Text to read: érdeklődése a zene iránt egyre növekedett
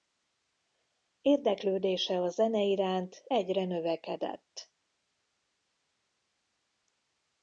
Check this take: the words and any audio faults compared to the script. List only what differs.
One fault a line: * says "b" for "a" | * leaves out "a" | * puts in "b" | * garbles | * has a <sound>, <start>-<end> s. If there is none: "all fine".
all fine